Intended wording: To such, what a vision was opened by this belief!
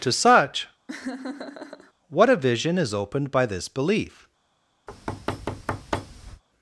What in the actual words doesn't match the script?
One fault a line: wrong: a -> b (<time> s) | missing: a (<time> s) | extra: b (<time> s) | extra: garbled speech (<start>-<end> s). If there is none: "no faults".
wrong: was -> is (2.8 s)